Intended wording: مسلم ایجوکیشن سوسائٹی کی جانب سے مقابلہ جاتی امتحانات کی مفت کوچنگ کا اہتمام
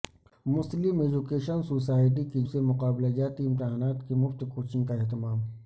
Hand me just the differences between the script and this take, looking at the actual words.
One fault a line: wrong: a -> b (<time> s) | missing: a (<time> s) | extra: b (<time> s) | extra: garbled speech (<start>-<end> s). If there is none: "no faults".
missing: جانب (2.4 s)